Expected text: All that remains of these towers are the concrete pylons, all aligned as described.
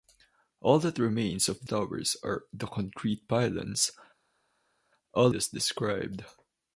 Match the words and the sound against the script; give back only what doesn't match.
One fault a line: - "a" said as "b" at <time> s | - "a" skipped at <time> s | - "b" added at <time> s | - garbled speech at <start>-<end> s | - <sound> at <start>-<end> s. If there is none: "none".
- "these" skipped at 1.7 s
- "aligned" skipped at 5.3 s